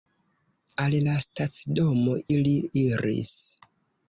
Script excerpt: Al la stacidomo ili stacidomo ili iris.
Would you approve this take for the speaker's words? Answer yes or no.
no